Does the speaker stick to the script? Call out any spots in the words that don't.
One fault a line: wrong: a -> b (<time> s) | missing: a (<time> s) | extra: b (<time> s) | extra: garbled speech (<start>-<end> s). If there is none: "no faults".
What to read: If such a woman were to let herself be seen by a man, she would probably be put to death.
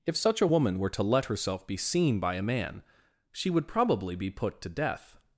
no faults